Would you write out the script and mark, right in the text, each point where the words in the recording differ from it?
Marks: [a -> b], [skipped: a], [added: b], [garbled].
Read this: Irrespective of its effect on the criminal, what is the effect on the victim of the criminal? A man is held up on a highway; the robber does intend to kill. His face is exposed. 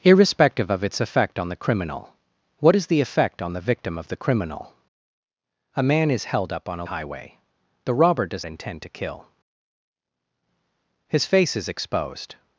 Irrespective of its effect on the criminal, what is the effect on the victim of the criminal? A man is held up on a highway; the robber does intend to kill. His face is exposed.